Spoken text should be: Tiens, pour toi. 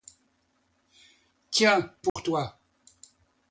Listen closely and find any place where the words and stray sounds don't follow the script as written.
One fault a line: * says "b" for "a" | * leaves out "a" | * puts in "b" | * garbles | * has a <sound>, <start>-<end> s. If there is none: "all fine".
* has a dropout, 2.1-2.2 s